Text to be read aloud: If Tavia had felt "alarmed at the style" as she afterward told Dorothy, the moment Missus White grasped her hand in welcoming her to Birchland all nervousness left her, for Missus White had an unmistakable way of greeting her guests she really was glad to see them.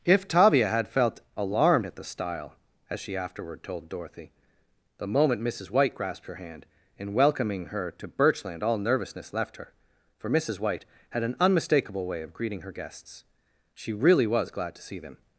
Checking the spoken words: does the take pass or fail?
pass